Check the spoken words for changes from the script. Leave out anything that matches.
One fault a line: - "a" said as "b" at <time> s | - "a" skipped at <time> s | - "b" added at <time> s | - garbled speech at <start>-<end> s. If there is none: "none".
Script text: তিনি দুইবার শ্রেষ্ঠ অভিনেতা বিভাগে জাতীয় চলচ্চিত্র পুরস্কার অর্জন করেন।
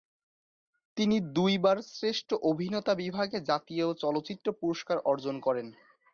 none